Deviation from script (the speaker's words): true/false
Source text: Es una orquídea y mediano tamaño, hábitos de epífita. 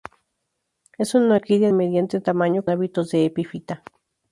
false